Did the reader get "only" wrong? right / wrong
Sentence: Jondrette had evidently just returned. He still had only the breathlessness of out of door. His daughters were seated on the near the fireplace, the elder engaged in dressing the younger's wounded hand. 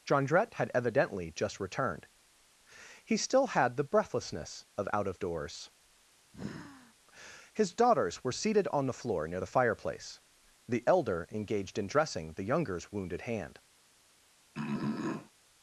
wrong